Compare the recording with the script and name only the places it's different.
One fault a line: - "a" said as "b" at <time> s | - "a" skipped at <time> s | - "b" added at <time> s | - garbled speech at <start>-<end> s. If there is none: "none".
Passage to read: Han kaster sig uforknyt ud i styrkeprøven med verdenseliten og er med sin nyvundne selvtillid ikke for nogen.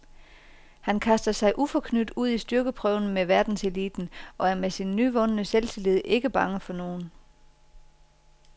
- "bange" added at 6.3 s